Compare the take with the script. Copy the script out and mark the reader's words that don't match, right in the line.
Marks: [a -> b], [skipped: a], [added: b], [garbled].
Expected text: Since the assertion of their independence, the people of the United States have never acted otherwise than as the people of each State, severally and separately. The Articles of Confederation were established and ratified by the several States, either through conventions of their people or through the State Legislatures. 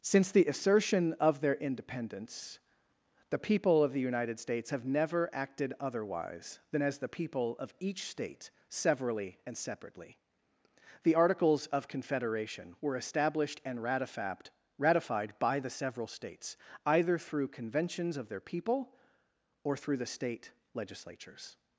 Since the assertion of their independence, the people of the United States have never acted otherwise than as the people of each State, severally and separately. The Articles of Confederation were established and ratified [added: ratified] by the several States, either through conventions of their people or through the State Legislatures.